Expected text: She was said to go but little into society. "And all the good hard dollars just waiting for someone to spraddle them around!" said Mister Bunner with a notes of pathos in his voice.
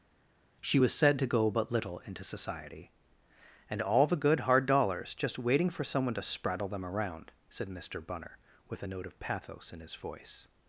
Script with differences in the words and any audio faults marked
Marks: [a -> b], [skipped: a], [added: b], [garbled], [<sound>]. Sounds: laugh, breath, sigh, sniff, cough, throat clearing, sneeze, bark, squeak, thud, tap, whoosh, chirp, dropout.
She was said to go but little into society. "And all the good hard dollars just waiting for someone to spraddle them around!" said Mister Bunner with a [notes -> note] of pathos in his voice.